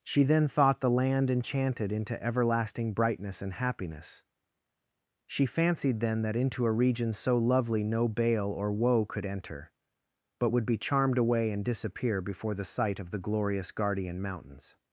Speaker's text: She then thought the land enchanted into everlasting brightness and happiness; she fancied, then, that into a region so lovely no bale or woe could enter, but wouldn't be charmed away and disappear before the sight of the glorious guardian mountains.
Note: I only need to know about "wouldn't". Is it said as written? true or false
false